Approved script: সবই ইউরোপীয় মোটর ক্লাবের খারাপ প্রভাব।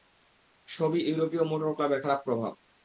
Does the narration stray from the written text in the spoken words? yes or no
no